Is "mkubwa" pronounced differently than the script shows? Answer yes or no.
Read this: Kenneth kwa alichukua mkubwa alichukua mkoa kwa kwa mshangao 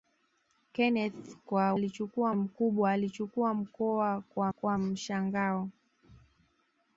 no